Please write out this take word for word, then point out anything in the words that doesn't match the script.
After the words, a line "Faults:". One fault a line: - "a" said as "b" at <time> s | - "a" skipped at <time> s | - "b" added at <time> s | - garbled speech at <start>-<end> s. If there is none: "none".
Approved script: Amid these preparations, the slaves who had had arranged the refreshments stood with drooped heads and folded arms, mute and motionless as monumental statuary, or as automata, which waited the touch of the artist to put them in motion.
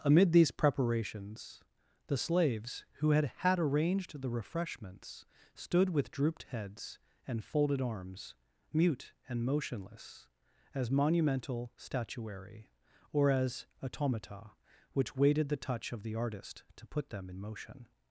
Amid these preparations, the slaves who had had arranged the refreshments stood with drooped heads and folded arms, mute and motionless as monumental statuary, or as automata, which waited the touch of the artist to put them in motion.
Faults:
none